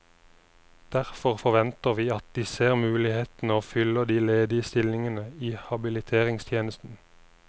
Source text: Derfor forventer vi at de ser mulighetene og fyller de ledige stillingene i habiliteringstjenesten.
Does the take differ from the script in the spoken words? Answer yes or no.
no